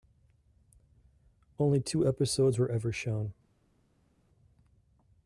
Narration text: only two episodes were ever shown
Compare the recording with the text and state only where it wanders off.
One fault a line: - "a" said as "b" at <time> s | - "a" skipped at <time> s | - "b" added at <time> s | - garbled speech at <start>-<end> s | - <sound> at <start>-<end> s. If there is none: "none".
none